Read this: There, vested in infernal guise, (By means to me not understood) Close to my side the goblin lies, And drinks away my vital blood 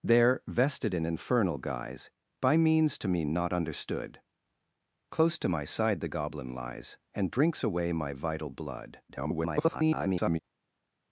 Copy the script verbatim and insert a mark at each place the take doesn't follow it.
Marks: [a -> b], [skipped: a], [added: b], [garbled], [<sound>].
There, vested in infernal guise, (By means to me not understood) Close to my side the goblin lies, And drinks away my vital blood [garbled]